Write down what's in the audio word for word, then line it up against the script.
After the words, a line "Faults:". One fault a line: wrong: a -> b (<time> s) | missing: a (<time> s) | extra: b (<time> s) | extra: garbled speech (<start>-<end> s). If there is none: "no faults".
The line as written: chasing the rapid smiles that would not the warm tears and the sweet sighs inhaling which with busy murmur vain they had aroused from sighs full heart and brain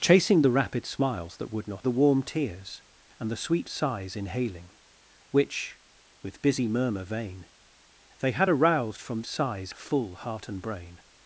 chasing the rapid smiles that would not the warm tears and the sweet sighs inhaling which with busy murmur vain they had aroused from sighs full heart and brain
Faults:
no faults